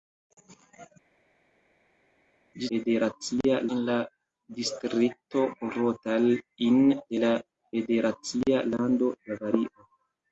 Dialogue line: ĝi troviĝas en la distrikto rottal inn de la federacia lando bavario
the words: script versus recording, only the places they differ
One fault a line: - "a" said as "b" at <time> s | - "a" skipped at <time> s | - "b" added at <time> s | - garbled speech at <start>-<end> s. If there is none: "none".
- "troviĝas" said as "federacia" at 2.7 s